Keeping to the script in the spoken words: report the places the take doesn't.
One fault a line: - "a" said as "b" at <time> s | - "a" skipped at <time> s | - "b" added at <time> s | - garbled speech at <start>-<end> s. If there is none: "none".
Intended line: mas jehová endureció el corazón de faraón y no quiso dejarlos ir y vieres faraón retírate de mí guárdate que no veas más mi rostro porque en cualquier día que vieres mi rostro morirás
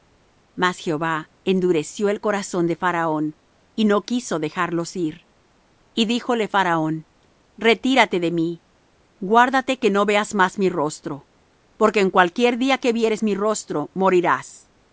- "vieres" said as "díjole" at 6.0 s